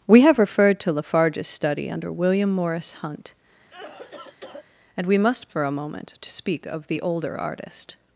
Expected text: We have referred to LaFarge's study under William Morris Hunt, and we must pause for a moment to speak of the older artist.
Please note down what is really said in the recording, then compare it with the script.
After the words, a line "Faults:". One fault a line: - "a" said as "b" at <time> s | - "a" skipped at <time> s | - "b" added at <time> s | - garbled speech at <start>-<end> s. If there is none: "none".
We have referred to LaFarge's study under William Morris Hunt, and we must for a moment to speak of the older artist.
Faults:
- "pause" skipped at 5.5 s